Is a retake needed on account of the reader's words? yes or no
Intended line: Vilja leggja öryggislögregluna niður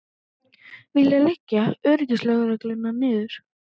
no